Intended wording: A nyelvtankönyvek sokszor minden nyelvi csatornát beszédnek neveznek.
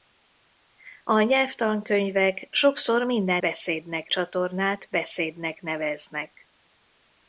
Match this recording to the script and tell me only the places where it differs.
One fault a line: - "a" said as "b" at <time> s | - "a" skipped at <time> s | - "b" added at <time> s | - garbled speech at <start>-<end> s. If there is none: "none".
- "nyelvi" said as "beszédnek" at 3.4 s